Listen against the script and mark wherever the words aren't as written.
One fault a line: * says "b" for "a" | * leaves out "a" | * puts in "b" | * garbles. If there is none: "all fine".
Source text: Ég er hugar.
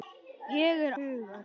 all fine